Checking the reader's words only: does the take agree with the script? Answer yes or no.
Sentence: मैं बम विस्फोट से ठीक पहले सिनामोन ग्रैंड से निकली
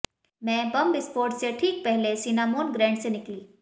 yes